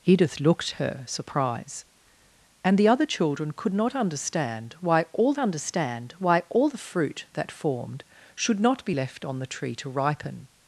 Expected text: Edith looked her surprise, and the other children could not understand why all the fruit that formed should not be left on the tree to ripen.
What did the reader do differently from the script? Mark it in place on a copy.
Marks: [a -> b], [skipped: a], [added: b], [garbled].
Edith looked her surprise, and the other children could not understand why all [added: understand why all] the fruit that formed should not be left on the tree to ripen.